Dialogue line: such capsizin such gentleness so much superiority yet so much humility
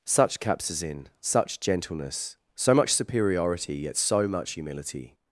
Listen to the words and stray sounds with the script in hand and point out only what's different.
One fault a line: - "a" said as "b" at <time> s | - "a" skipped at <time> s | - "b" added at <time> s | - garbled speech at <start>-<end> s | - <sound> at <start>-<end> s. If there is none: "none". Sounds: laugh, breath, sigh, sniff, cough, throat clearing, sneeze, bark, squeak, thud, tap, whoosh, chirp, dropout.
none